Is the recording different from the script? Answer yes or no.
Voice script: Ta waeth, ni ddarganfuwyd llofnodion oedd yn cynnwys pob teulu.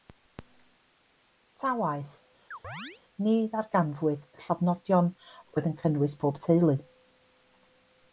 no